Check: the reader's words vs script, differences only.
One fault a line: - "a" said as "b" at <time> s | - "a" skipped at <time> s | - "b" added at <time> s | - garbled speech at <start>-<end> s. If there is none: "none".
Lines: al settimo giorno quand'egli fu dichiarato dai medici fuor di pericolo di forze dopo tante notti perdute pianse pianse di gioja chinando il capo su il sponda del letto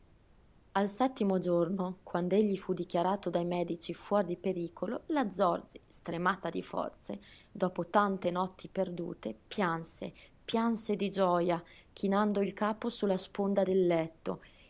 - "la zorzi stremata" added at 5.1 s
- "il" said as "la" at 13.1 s